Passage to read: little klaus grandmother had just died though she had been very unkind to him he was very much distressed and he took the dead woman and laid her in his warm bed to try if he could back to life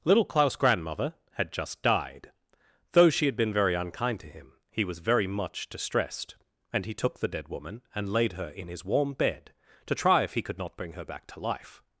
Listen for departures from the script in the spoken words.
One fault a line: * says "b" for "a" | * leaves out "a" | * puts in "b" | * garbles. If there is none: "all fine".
* puts in "not bring her"